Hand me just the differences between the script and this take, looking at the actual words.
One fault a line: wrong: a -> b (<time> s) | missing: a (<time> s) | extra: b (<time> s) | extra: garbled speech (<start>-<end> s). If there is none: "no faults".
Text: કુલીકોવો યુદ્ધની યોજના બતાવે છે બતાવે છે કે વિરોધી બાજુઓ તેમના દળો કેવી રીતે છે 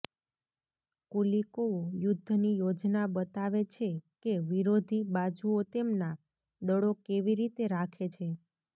missing: બતાવે છે (3.9 s)
extra: રાખે (7.7 s)